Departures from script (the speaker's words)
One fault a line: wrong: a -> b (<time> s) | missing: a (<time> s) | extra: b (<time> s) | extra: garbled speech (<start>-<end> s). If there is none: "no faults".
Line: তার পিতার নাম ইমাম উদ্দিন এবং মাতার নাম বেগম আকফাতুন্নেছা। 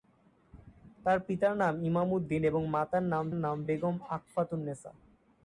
extra: নাম (3.3 s)